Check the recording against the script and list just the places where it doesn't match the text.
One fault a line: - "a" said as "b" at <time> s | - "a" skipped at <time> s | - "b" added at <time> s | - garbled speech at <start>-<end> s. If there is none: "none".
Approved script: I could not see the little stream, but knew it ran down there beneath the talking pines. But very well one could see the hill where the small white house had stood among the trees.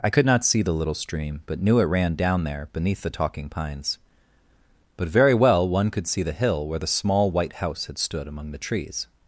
none